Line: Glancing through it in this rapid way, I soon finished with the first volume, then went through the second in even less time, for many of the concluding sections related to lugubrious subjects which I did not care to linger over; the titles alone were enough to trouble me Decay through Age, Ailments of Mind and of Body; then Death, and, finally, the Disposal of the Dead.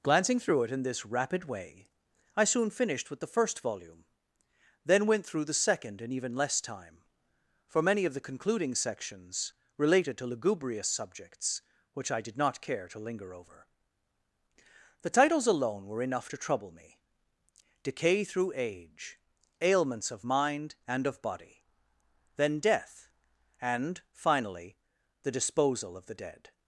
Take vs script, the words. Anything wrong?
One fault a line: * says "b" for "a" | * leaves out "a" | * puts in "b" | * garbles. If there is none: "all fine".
all fine